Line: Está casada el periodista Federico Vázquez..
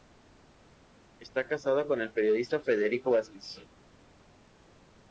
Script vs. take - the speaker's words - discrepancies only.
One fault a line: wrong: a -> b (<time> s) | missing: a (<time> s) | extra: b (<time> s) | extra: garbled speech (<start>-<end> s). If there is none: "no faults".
extra: con (1.9 s)